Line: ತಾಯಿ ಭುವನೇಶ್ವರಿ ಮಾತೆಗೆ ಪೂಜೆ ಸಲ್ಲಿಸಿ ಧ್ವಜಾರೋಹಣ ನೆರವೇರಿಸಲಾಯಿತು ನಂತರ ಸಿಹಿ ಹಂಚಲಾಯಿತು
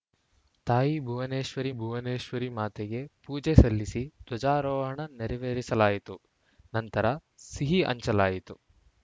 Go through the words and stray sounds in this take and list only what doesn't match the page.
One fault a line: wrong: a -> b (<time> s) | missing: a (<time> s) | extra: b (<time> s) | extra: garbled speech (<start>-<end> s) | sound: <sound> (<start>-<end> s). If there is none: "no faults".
extra: ಭುವನೇಶ್ವರಿ (1.7 s)